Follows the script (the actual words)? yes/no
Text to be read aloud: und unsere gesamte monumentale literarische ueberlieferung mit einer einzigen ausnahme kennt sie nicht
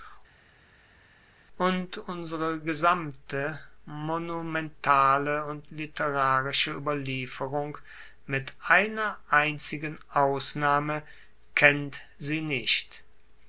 no